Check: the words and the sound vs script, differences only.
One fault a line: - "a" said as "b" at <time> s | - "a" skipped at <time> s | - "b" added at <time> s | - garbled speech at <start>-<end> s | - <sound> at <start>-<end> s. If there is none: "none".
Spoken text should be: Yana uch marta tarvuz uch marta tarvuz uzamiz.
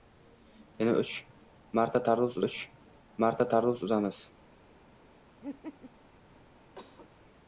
- laugh at 5.4-5.9 s
- cough at 6.8-7.1 s